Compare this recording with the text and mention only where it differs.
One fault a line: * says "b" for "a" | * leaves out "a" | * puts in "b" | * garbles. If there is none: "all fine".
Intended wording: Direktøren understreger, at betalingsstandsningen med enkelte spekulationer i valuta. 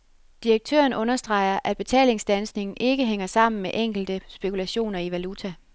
* puts in "ikke hænger sammen"